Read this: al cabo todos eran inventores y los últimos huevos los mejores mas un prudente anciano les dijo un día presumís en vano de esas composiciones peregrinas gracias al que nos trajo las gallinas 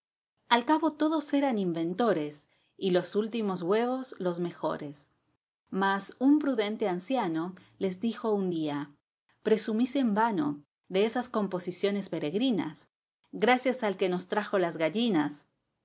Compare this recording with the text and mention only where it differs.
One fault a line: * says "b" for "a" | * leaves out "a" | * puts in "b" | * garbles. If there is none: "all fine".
all fine